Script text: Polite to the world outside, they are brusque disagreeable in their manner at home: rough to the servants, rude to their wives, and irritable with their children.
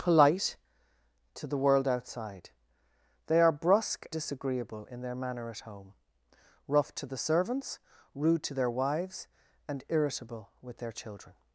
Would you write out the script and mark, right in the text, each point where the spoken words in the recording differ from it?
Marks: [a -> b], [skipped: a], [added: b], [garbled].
Polite to the world outside, they are brusque disagreeable in their manner at home: rough to the servants, rude to their wives, and irritable with their children.